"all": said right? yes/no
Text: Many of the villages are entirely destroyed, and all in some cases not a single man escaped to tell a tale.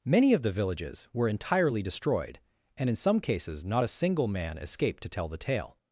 no